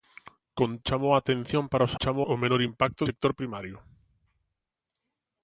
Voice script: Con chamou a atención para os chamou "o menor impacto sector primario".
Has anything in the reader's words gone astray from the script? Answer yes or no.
no